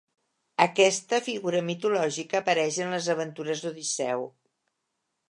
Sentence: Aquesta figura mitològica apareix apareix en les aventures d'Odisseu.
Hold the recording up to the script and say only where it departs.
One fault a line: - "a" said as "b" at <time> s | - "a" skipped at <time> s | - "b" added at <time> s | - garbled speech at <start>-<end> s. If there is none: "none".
- "apareix" skipped at 2.8 s